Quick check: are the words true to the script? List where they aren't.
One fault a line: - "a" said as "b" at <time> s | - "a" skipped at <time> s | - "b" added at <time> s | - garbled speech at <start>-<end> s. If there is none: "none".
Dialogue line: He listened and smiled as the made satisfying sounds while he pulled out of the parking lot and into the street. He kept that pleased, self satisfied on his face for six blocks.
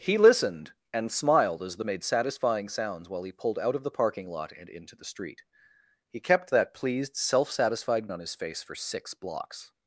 none